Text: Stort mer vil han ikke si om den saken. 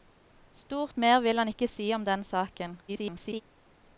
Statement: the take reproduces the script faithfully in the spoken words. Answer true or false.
false